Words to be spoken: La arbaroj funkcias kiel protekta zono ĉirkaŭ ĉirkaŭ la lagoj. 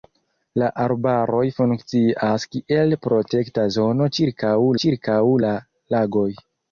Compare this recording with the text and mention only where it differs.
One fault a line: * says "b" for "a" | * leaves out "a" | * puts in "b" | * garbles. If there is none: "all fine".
all fine